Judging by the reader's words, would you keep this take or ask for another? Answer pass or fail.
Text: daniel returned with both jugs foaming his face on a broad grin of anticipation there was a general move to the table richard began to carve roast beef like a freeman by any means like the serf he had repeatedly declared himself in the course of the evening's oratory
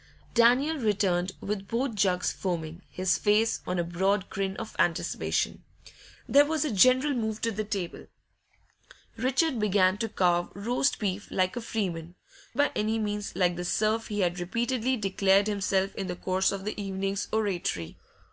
pass